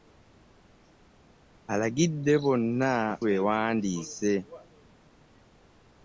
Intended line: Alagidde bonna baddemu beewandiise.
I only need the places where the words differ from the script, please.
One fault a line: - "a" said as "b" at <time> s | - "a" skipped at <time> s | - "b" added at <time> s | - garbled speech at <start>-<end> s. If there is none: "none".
- "baddemu" skipped at 2.9 s